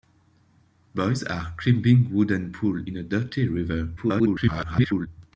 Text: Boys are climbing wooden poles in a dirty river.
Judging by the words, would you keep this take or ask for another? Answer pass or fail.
fail